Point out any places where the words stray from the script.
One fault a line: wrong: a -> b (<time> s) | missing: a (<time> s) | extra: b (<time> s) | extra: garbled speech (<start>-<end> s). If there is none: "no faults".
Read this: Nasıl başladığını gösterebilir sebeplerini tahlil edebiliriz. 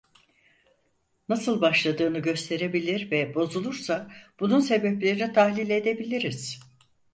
extra: ve bozulursa bunun (3.1 s)